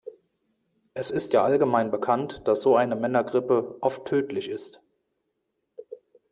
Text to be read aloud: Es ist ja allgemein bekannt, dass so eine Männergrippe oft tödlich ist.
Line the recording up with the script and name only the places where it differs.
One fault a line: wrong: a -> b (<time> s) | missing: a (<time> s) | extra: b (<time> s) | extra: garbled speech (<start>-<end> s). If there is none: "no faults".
no faults